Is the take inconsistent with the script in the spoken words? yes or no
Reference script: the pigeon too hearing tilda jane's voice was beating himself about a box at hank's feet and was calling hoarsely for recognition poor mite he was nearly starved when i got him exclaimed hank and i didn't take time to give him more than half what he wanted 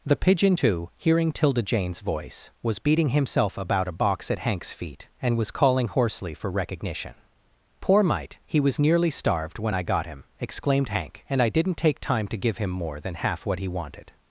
no